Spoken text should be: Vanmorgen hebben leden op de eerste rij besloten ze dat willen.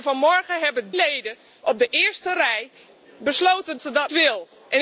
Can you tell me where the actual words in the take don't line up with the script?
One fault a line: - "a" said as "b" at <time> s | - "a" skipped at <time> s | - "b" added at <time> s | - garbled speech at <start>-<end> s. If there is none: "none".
none